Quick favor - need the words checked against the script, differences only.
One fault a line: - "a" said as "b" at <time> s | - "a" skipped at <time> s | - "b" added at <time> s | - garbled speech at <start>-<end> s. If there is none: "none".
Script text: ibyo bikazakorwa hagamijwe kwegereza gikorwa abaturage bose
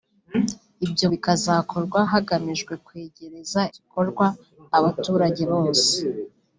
none